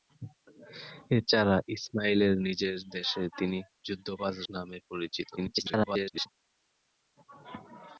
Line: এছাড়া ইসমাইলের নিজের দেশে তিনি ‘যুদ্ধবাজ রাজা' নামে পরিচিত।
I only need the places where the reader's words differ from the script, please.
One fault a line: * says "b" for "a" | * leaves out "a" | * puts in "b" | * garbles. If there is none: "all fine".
* leaves out "রাজা"
* garbles